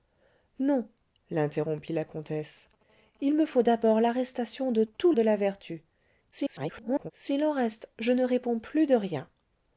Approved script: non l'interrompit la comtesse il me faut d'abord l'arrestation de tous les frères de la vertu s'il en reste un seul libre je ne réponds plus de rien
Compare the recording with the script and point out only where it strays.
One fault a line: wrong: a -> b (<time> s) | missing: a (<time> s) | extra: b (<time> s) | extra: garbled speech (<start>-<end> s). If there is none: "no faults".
missing: les frères (5.1 s)
extra: garbled speech (6.3-7.1 s)
missing: un seul libre (7.9 s)